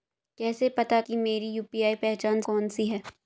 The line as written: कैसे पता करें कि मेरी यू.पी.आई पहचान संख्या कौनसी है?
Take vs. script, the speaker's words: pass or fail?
fail